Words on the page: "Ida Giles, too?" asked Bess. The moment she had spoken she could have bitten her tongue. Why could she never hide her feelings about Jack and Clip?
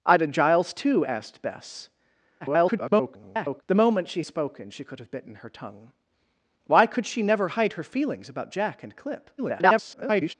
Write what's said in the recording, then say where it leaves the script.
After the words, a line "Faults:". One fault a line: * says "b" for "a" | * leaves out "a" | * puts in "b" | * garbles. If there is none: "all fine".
"Ida Giles, too?" asked Bess. [garbled] The moment she spoken she could have bitten her tongue. Why could she never hide her feelings about Jack and Clip? [garbled]
Faults:
* garbles
* leaves out "had"
* garbles